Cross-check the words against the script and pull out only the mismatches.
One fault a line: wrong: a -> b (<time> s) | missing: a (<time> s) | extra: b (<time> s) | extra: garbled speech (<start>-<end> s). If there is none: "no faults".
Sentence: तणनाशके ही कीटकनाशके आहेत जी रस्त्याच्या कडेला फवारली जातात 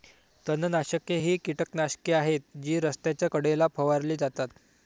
no faults